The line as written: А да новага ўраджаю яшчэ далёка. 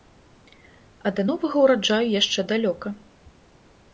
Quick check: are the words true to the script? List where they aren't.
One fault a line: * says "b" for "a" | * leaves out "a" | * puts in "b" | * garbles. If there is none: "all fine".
all fine